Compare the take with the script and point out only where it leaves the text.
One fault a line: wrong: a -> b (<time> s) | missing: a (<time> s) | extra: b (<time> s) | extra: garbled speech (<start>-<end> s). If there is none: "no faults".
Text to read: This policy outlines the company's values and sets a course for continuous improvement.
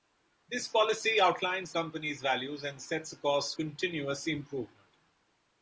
missing: the (1.8 s)
missing: for (3.5 s)